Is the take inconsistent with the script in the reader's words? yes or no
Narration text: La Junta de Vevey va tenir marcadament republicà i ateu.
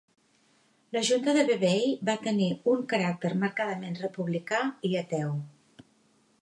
yes